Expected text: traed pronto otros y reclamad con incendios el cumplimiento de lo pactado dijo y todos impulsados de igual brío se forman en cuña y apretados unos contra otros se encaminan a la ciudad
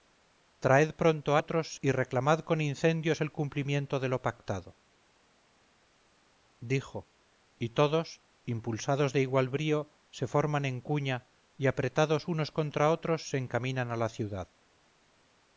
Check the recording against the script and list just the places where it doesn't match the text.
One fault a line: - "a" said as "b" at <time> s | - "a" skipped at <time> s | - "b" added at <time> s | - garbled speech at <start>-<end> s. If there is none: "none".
none